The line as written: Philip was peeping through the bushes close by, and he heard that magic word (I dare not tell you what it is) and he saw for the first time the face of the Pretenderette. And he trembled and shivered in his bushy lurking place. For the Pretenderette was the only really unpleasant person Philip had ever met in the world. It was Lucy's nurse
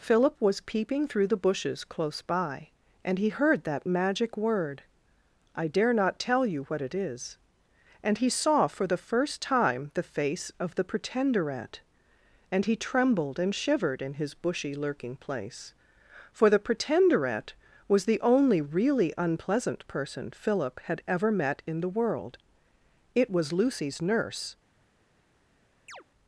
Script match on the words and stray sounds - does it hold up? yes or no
no